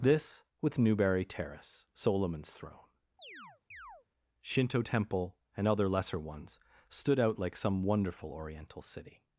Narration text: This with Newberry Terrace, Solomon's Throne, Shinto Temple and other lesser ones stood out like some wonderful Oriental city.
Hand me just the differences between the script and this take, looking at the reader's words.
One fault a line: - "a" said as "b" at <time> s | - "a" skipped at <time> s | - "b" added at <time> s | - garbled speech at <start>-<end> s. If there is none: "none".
none